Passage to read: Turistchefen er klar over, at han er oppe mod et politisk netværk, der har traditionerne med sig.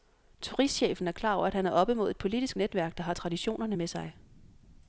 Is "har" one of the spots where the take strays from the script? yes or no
no